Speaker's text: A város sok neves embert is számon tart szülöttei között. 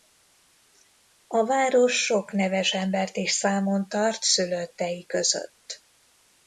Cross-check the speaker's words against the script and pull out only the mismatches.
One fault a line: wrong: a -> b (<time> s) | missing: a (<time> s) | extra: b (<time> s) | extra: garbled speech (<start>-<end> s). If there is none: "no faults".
no faults